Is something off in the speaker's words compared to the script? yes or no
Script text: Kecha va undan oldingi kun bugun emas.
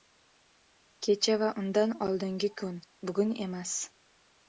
no